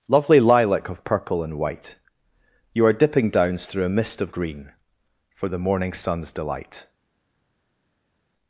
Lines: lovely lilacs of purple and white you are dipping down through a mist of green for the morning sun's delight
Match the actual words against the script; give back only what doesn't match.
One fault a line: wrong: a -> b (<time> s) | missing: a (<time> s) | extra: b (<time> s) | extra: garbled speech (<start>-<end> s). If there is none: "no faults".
wrong: lilacs -> lilac (0.4 s)
wrong: down -> downs (3.3 s)